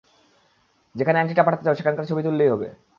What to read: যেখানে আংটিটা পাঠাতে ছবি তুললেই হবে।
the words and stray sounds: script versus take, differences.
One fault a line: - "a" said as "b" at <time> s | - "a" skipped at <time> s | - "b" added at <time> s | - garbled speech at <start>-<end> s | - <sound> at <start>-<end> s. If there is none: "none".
- "চাও সেখানকার" added at 1.6 s